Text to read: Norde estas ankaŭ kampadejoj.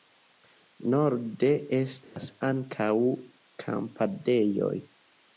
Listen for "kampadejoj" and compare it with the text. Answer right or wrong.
right